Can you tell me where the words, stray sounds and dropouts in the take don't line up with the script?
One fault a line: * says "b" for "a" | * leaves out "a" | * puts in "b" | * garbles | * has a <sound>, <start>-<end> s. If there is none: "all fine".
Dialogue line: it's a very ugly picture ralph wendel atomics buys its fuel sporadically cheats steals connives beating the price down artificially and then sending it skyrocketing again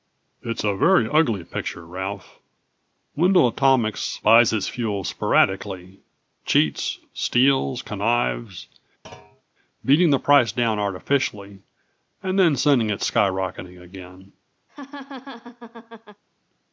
* has a thud, 9.0-9.4 s
* has a laugh, 14.7-16.2 s